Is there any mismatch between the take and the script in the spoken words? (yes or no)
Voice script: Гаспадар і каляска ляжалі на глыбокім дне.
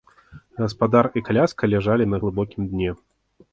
no